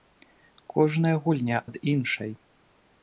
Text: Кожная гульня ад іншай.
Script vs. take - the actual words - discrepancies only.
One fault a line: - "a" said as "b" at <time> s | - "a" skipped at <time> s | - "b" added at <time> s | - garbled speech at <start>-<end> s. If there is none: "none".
none